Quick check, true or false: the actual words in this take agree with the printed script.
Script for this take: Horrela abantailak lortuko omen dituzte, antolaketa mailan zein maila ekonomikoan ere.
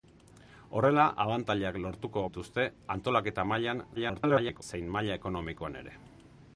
false